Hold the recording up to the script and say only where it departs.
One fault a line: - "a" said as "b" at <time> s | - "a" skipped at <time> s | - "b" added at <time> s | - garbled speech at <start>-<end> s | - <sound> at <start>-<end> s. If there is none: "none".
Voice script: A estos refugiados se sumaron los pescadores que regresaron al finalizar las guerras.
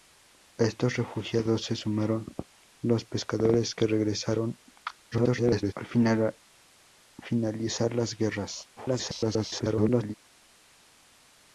- garbled speech at 5.1-5.7 s
- garbled speech at 8.8-10.1 s